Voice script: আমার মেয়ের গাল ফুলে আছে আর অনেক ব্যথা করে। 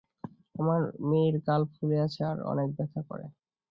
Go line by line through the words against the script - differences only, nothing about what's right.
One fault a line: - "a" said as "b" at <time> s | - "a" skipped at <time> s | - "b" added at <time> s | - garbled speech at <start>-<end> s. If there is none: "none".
none